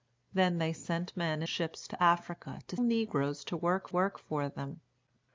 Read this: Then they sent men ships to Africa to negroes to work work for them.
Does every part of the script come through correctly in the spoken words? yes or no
yes